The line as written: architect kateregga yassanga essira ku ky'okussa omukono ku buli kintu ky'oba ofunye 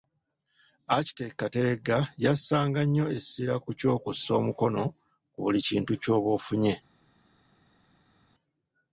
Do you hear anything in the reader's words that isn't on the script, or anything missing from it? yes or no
yes